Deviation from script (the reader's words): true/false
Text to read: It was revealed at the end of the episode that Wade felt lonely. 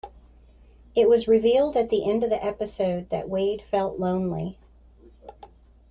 false